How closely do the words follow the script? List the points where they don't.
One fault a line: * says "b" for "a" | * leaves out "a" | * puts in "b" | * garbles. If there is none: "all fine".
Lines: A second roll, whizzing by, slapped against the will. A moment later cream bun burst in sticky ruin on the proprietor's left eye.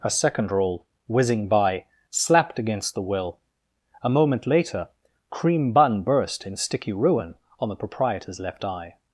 all fine